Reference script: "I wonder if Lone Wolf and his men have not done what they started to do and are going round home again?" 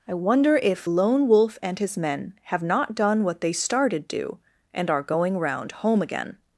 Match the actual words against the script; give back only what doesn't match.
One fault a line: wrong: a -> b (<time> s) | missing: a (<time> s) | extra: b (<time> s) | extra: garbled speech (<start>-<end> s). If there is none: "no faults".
missing: to (4.1 s)